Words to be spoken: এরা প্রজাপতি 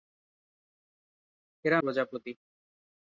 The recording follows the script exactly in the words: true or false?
true